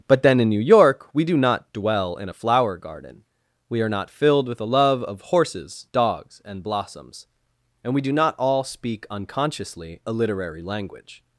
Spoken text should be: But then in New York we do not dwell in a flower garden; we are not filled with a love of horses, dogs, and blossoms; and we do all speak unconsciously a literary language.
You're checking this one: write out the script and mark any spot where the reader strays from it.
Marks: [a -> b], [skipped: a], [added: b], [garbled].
But then in New York we do not dwell in a flower garden; we are not filled with a love of horses, dogs, and blossoms; and we do [added: not] all speak unconsciously a literary language.